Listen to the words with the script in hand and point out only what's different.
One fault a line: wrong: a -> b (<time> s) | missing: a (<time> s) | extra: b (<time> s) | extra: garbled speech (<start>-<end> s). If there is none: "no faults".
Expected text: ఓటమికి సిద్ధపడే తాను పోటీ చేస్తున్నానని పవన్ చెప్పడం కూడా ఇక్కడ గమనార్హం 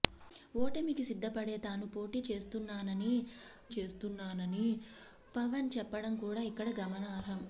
extra: చేస్తున్నానని (3.8 s)